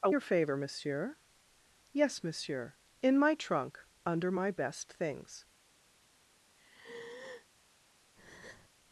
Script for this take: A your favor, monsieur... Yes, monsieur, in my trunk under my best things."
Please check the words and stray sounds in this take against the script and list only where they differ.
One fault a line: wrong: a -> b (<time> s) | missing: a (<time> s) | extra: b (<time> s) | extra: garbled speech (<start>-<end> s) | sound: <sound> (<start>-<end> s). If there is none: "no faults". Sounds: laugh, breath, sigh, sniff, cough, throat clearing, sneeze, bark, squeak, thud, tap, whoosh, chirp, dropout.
sound: sigh (6.6-7.5 s)
sound: breath (8.2-8.7 s)